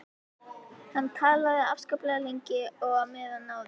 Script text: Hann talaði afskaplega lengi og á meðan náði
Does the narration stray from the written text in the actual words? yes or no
no